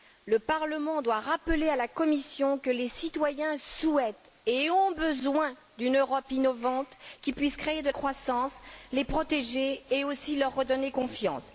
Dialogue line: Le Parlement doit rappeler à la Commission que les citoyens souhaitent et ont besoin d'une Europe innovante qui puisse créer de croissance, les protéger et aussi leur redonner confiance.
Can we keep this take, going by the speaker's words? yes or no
yes